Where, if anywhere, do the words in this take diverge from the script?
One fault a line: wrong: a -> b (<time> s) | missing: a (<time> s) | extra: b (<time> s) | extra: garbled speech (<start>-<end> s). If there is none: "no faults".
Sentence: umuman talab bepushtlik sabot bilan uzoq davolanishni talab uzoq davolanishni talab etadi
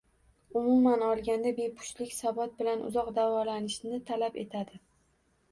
wrong: talab -> olganda (1.1 s)
missing: uzoq davolanishni talab (4.4 s)